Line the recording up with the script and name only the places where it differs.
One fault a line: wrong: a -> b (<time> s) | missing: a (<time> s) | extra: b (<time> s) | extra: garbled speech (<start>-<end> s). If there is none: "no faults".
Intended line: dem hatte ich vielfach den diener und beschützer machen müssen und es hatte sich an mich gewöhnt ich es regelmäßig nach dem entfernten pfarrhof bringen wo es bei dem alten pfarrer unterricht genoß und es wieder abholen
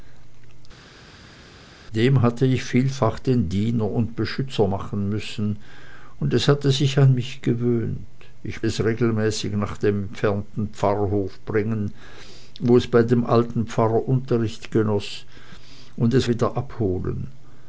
no faults